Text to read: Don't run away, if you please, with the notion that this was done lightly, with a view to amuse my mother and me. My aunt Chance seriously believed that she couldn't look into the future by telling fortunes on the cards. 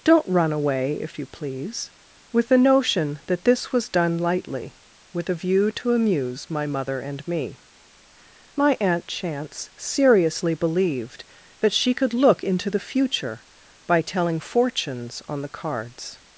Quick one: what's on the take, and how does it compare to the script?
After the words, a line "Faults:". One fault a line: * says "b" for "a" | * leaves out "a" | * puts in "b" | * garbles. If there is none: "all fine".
Don't run away, if you please, with the notion that this was done lightly, with a view to amuse my mother and me. My aunt Chance seriously believed that she could look into the future by telling fortunes on the cards.
Faults:
* says "could" for "couldn't"